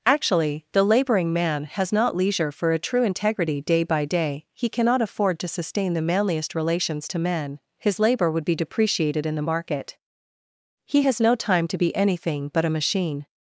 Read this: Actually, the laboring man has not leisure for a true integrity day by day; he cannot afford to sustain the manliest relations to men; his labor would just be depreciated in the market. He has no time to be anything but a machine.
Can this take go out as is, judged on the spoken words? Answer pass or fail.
fail